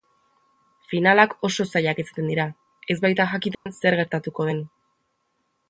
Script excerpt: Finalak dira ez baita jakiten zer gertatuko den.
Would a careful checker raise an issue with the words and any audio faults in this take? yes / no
yes